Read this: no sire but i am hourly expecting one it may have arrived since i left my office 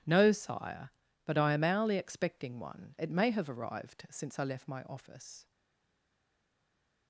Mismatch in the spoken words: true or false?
false